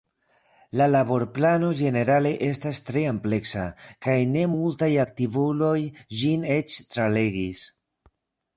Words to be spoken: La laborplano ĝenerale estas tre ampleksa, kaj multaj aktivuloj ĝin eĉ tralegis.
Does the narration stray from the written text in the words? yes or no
yes